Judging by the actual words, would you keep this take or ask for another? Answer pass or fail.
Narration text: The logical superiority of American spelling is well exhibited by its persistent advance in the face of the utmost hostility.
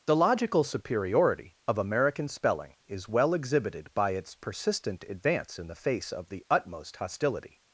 pass